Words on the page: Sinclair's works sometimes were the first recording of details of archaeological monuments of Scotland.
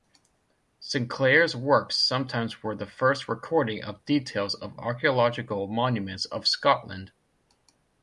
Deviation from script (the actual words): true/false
false